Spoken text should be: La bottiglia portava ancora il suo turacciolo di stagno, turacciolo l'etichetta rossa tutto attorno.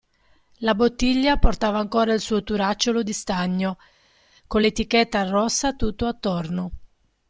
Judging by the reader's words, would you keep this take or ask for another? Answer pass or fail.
fail